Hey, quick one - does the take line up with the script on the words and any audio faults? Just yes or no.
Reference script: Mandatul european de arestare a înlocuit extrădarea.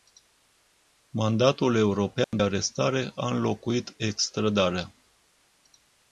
no